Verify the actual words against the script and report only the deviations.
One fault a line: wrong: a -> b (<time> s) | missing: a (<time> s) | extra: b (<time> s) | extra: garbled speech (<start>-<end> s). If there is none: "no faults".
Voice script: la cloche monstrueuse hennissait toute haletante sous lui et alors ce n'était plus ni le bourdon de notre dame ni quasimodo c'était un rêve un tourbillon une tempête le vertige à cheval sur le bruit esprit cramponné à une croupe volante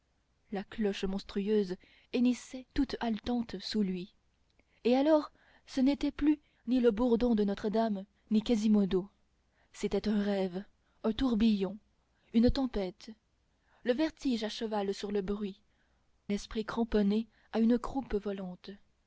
no faults